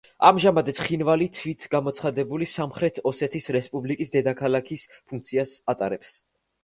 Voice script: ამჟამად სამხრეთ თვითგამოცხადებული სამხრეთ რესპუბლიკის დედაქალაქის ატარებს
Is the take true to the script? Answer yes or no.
no